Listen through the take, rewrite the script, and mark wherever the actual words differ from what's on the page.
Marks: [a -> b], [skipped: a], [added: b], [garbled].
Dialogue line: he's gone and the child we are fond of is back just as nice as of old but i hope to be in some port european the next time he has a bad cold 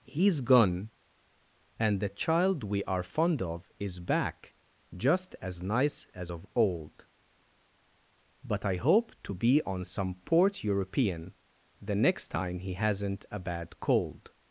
he's gone and the child we are fond of is back just as nice as of old but i hope to be [in -> on] some port european the next time he [has -> hasn't] a bad cold